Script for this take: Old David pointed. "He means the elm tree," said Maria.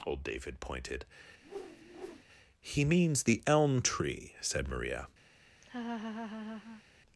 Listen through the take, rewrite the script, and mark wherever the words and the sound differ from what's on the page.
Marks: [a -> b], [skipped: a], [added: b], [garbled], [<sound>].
Old David pointed. [whoosh] "He means the elm tree," said Maria. [laugh]